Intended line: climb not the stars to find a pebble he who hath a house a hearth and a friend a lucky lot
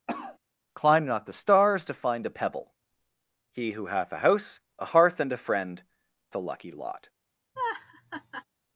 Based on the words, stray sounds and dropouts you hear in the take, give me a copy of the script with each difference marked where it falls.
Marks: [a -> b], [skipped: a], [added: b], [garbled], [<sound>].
[cough] climb not the stars to find a pebble he who hath a house a hearth and a friend a lucky lot [laugh]